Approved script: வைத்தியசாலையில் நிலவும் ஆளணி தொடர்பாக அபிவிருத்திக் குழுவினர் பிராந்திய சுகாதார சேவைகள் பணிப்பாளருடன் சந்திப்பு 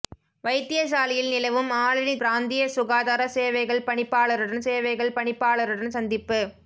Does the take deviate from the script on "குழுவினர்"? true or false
true